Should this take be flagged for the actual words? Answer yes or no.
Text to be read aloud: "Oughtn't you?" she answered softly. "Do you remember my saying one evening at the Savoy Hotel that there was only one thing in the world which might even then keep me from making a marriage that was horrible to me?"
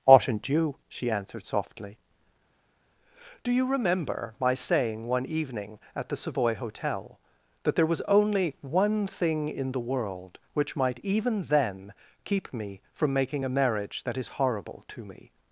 yes